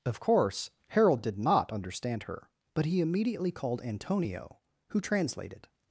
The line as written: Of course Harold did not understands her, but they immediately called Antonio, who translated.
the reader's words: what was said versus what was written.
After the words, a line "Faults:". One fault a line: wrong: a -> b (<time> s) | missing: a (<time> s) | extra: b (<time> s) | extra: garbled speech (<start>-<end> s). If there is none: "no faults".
Of course Harold did not understand her, but he immediately called Antonio, who translated.
Faults:
wrong: understands -> understand (1.7 s)
wrong: they -> he (2.9 s)